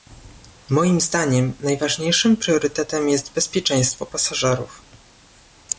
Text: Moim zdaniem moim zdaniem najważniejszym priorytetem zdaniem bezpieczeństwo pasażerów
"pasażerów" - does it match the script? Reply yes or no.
yes